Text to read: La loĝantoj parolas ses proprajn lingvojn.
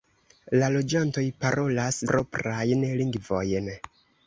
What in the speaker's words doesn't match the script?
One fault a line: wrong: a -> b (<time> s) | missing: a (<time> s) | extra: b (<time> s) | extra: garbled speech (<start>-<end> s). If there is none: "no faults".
missing: ses (2.0 s)